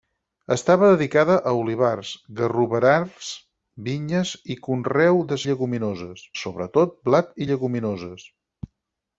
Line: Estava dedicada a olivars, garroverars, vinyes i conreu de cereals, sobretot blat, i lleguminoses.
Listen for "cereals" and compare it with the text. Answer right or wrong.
wrong